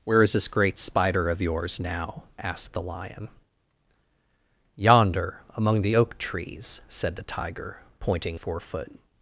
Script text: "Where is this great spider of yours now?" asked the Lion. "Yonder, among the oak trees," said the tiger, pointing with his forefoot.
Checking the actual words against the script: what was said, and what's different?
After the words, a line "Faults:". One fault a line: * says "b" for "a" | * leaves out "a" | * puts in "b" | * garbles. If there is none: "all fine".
"Where is this great spider of yours now?" asked the Lion. "Yonder, among the oak trees," said the tiger, pointing forefoot.
Faults:
* leaves out "with his"